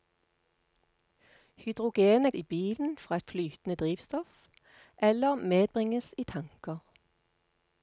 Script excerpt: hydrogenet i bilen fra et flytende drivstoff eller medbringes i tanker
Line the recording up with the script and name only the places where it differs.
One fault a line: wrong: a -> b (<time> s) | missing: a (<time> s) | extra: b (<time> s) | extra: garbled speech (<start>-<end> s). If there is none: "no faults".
no faults